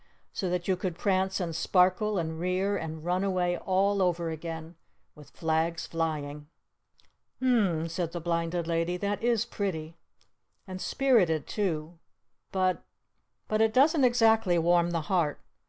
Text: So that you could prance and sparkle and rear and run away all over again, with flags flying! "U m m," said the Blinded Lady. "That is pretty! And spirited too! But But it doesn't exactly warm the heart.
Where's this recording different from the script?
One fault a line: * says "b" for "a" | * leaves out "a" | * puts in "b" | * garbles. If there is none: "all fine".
all fine